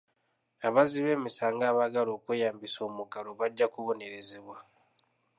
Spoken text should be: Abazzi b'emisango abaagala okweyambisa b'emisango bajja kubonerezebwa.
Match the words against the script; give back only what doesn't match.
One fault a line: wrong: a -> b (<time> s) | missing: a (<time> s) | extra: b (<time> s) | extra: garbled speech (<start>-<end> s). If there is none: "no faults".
wrong: b'emisango -> omuggalo (2.9 s)